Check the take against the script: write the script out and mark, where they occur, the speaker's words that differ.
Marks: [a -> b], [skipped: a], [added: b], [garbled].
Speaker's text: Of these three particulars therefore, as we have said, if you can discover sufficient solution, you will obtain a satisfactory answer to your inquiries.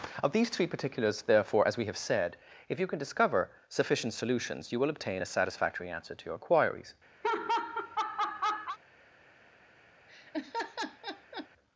Of these three particulars therefore, as we have said, if you can discover sufficient [solution, -> solutions] you will obtain a satisfactory answer to your inquiries.